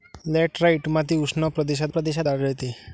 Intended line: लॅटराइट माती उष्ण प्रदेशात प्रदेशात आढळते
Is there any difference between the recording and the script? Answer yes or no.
no